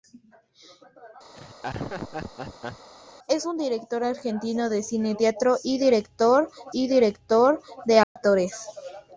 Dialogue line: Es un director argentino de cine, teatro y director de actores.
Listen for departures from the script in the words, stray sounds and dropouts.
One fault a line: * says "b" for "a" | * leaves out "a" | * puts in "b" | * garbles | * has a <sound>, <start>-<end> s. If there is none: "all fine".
* has a laugh, 1.3-2.9 s
* puts in "y director"
* has a dropout, 8.0-8.2 s